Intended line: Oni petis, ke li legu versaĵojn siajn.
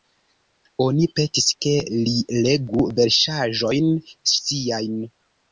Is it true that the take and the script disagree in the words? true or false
false